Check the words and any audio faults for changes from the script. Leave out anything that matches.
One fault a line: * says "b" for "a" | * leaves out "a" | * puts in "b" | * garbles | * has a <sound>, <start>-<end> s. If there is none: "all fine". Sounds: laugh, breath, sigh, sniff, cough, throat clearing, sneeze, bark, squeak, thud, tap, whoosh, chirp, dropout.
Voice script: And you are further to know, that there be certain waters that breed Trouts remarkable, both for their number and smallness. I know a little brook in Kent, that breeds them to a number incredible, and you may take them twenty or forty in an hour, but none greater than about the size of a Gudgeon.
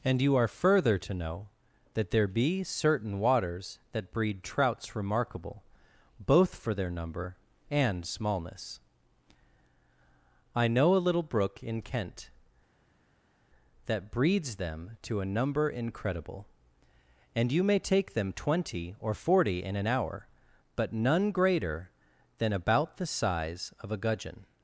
all fine